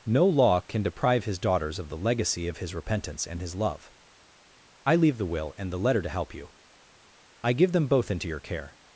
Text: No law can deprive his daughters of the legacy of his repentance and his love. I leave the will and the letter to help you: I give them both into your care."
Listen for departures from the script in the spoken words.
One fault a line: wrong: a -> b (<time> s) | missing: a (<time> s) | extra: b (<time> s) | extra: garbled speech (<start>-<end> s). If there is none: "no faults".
no faults